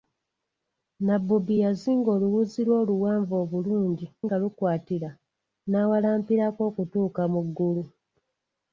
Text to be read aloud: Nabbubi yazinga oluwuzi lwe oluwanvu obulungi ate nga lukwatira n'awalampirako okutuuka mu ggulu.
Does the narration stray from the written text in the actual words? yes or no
yes